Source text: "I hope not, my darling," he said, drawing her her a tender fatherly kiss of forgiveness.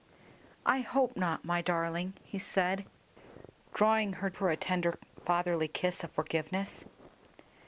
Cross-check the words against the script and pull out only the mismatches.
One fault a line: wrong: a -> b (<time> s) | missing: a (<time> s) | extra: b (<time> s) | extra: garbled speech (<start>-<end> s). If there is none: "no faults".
no faults